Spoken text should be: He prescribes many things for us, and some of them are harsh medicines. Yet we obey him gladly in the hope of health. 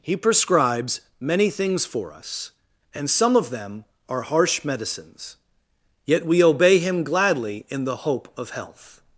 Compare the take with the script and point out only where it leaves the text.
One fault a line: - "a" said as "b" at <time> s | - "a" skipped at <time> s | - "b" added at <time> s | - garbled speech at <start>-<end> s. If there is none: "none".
none